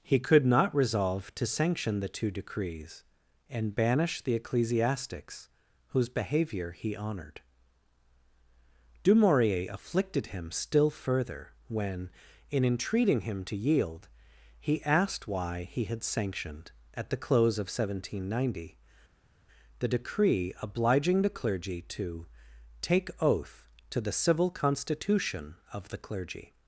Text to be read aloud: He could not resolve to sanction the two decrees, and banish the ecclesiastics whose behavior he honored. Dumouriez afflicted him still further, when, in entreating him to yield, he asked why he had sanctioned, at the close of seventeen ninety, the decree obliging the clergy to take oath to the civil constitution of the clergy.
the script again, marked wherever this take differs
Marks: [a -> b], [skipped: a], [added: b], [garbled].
He could not resolve to sanction the two decrees, and banish the ecclesiastics whose behavior he honored. Dumouriez afflicted him still further, when, in entreating him to yield, he asked why he had sanctioned, at the close of seventeen ninety, the decree obliging the clergy to take oath to the civil constitution of the clergy.